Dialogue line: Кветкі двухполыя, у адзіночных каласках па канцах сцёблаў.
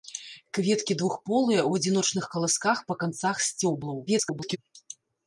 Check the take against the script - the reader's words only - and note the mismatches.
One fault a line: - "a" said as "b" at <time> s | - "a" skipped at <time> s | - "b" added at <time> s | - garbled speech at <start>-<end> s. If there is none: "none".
- garbled speech at 4.1-4.6 s